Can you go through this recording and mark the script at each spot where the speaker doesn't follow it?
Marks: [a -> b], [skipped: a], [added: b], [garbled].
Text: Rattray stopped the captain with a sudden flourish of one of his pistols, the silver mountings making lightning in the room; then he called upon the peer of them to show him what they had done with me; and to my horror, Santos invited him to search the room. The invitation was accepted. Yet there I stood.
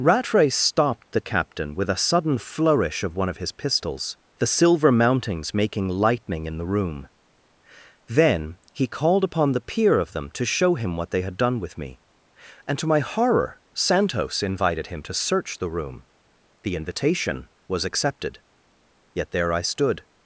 Rattray stopped the captain with a sudden flourish of one of his pistols, the silver mountings making lightning in the room; then he called upon the peer of them to show him what they had done with me; and to my horror, Santos invited him to search the room. The invitation was accepted. Yet there I stood.